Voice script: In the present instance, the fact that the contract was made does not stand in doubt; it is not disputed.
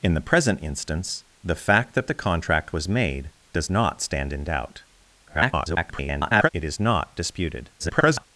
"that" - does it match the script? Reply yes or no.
yes